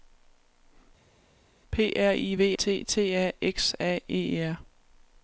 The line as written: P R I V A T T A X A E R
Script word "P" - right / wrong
right